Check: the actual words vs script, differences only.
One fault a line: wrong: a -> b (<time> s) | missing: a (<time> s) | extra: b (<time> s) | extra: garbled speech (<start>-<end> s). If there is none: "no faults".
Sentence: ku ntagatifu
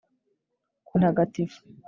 no faults